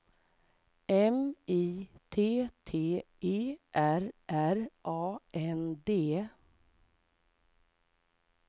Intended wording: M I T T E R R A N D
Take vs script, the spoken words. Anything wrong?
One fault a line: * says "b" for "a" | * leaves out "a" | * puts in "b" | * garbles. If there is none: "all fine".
all fine